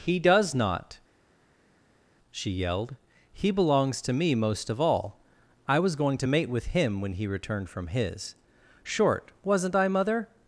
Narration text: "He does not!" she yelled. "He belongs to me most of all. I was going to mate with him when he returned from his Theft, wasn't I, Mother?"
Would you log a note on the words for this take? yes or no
yes